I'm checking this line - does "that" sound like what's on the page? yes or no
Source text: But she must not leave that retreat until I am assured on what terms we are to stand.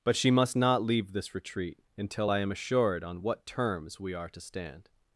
no